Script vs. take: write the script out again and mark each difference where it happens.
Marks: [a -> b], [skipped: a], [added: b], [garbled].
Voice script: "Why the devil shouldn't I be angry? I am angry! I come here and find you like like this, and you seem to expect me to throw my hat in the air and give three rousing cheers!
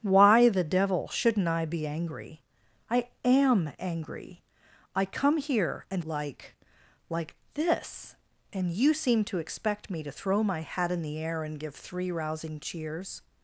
"Why the devil shouldn't I be angry? I am angry! I come here and [skipped: find you] like like this, and you seem to expect me to throw my hat in the air and give three rousing cheers!